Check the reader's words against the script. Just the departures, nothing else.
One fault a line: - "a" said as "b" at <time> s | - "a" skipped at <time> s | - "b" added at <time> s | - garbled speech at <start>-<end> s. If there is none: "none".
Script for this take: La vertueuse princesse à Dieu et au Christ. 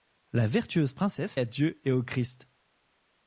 none